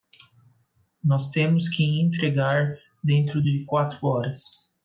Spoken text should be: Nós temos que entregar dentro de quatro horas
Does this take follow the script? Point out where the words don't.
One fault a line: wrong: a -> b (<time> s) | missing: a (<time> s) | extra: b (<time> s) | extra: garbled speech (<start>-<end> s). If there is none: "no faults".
no faults